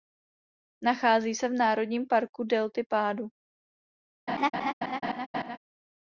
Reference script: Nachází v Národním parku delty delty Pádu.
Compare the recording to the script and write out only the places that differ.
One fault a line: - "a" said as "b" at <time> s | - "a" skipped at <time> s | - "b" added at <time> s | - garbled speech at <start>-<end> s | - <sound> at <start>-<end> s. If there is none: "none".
- "se" added at 1.4 s
- "delty" skipped at 2.8 s
- laugh at 4.3-5.6 s